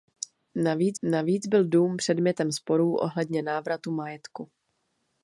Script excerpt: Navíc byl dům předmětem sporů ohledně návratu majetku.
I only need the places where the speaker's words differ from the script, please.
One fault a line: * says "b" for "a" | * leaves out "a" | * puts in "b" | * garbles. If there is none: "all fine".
* puts in "navíc"